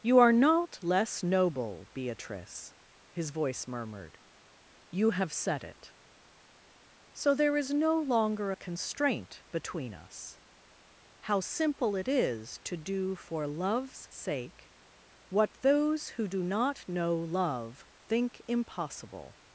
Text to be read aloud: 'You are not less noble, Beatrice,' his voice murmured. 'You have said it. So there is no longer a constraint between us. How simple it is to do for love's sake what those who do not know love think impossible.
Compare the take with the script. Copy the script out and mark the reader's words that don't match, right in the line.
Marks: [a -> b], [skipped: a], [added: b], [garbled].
'You are not less noble, Beatrice,' his voice murmured. 'You have said it. So there is no longer a constraint between us. How simple it is to do for love's sake what those who do not know love think impossible.